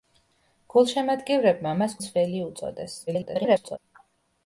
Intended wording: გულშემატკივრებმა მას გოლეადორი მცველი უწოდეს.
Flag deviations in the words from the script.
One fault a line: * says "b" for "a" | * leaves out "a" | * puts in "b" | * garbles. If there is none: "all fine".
* leaves out "გოლეადორი"
* garbles